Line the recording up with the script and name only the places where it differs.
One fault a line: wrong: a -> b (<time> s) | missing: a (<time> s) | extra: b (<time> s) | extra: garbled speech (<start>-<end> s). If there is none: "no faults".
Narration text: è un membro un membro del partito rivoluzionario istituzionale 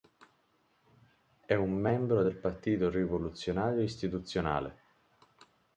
missing: un membro (2.2 s)